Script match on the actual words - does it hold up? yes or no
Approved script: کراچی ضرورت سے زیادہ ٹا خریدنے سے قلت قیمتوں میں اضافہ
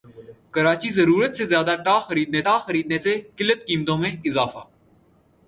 no